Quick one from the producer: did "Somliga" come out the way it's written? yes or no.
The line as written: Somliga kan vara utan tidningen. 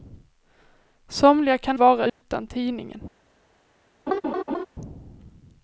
yes